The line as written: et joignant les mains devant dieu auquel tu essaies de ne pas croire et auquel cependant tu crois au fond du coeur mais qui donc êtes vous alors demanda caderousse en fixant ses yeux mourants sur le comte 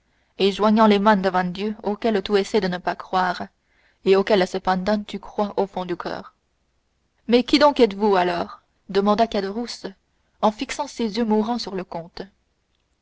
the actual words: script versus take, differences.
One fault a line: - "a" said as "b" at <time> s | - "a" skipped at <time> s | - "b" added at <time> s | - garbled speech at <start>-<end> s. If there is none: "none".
none